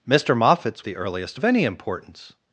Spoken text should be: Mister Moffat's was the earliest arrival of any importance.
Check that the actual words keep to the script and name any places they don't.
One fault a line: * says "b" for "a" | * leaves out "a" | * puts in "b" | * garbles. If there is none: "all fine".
* leaves out "was"
* leaves out "arrival"